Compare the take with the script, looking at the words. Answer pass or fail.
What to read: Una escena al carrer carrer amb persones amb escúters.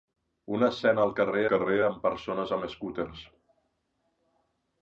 pass